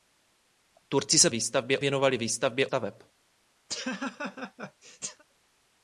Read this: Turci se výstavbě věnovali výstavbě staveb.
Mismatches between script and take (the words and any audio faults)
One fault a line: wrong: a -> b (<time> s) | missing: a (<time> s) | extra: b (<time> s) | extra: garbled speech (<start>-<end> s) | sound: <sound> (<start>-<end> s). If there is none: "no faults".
sound: laugh (3.7-5.2 s)